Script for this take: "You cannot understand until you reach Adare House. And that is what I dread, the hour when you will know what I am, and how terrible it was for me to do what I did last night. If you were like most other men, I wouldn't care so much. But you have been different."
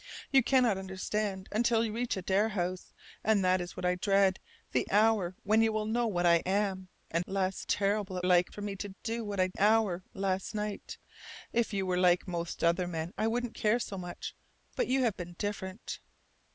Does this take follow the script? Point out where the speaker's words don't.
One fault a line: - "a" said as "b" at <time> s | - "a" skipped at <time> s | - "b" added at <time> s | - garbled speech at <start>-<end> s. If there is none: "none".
- "how" said as "last" at 7.3 s
- "was" said as "like" at 8.3 s
- "did" said as "hour" at 9.6 s